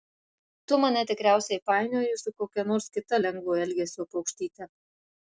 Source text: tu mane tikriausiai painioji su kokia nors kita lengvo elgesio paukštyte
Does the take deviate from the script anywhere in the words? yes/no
no